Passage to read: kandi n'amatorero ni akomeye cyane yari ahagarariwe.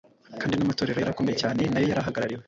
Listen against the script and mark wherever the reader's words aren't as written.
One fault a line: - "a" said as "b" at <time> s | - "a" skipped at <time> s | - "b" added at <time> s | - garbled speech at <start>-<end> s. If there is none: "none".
- "ni" said as "yari" at 1.0 s
- "nayo" added at 1.7 s